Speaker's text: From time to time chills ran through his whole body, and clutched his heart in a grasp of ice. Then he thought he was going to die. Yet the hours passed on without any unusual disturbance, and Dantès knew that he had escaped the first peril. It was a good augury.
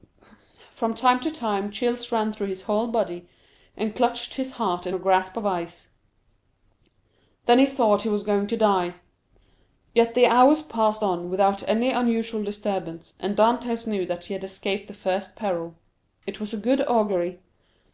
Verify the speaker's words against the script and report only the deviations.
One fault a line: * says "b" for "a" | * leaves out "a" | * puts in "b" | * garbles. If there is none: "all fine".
all fine